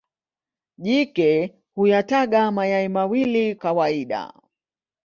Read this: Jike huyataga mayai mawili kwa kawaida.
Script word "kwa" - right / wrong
wrong